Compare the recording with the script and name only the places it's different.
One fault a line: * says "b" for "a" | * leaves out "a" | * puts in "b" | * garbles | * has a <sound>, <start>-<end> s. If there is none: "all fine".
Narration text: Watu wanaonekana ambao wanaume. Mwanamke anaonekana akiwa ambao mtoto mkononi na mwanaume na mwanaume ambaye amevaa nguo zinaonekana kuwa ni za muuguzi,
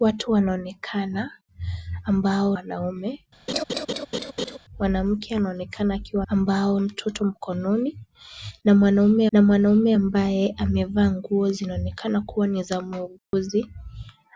* has a laugh, 3.5-4.6 s
* has a dropout, 13.2-13.3 s